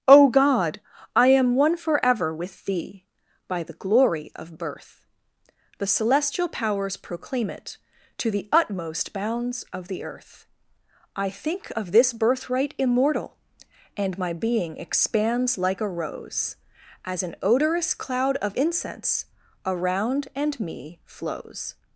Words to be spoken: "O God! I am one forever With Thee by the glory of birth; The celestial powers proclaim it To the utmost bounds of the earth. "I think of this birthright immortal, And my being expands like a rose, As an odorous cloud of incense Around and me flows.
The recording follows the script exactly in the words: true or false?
true